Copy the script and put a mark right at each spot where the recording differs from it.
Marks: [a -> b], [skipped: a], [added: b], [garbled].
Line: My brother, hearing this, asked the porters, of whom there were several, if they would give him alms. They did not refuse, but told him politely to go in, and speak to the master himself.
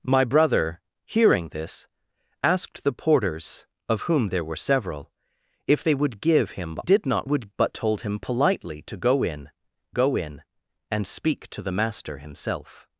My brother, hearing this, asked the porters, of whom there were several, if they would give him [skipped: alms. They] did not [refuse, -> would] but told him politely to go in, [added: go in] and speak to the master himself.